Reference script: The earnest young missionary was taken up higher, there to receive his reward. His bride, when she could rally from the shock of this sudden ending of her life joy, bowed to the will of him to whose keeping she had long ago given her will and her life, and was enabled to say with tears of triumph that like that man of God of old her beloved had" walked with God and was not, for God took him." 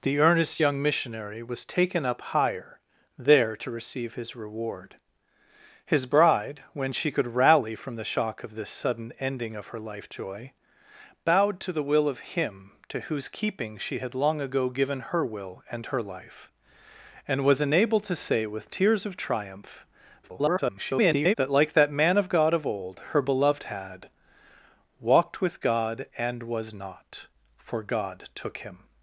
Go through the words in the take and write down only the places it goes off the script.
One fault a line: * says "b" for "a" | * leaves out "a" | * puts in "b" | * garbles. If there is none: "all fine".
* garbles